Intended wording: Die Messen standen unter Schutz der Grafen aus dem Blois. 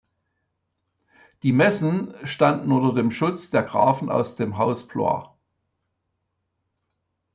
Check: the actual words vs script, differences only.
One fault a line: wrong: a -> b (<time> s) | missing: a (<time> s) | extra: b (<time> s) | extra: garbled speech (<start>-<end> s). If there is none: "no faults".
extra: dem (2.9 s)
extra: Haus (4.6 s)